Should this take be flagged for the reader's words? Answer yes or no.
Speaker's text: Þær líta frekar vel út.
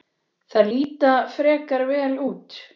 no